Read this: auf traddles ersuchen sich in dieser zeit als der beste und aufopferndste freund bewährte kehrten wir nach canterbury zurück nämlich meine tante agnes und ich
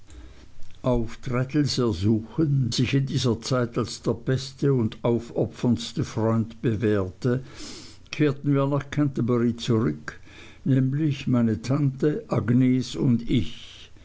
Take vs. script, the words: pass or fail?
pass